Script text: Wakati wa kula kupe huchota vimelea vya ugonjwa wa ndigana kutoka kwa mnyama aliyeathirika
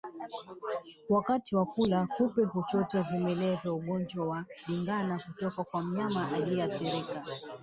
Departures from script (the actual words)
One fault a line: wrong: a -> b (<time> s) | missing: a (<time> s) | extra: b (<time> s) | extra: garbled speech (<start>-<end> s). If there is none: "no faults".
no faults